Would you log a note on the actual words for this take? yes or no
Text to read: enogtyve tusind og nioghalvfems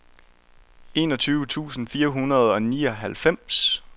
yes